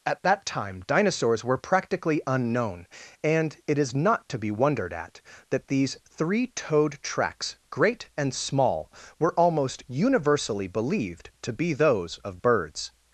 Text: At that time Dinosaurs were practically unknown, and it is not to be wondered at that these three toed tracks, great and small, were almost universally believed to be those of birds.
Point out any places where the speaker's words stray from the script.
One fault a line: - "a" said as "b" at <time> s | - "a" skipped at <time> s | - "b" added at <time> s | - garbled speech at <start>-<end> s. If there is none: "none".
none